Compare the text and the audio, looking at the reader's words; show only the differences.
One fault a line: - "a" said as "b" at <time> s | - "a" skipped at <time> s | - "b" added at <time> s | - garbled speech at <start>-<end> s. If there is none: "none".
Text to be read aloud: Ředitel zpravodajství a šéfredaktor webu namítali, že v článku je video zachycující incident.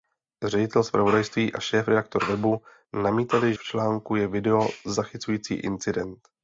- "že" skipped at 3.5 s